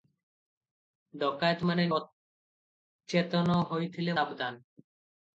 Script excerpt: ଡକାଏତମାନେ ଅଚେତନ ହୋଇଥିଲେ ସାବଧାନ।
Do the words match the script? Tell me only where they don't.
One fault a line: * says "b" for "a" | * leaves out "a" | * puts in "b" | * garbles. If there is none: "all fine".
all fine